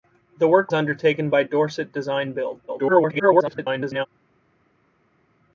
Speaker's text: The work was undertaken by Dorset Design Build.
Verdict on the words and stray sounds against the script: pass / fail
fail